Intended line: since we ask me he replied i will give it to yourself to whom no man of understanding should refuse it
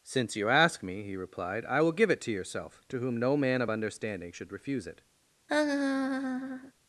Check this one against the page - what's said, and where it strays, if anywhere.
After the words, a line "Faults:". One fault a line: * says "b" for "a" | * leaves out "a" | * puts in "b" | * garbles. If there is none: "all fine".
since you ask me he replied i will give it to yourself to whom no man of understanding should refuse it
Faults:
* says "you" for "we"